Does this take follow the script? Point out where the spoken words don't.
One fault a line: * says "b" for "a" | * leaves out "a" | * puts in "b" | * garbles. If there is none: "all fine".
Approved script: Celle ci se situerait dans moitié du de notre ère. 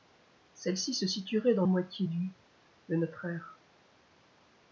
all fine